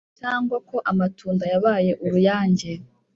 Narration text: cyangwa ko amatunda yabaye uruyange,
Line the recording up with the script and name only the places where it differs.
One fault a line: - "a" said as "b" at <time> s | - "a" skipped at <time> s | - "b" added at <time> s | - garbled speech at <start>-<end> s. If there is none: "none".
none